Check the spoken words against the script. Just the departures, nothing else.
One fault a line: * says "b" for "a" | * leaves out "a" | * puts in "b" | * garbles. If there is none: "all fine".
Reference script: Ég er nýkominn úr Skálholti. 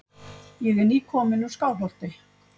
all fine